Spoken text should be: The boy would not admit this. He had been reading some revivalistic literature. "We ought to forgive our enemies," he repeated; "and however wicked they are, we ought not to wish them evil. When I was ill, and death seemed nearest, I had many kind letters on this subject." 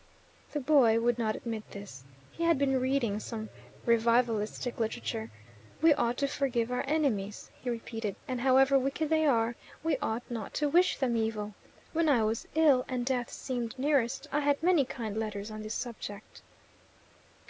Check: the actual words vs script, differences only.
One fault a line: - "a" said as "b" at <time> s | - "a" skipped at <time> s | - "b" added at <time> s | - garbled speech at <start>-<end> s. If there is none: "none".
none